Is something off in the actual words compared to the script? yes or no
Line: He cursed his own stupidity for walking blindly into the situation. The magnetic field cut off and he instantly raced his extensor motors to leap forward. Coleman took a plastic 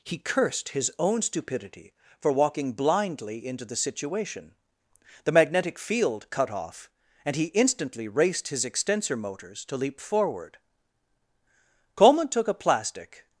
no